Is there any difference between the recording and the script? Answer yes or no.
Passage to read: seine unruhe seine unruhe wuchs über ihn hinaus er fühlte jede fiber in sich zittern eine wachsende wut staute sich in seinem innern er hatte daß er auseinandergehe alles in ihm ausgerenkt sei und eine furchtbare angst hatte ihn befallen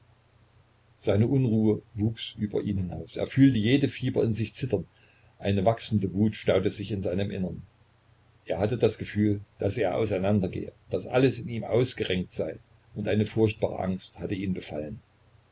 yes